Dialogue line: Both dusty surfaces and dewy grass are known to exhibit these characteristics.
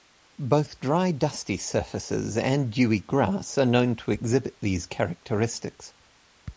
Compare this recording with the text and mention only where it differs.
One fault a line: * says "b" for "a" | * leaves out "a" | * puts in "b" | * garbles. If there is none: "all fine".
* puts in "dry"